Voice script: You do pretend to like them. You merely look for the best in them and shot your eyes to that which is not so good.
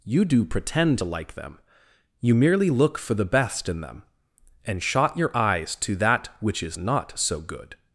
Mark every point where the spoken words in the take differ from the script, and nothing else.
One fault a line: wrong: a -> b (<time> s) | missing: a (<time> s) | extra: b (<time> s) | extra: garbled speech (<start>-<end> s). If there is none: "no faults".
no faults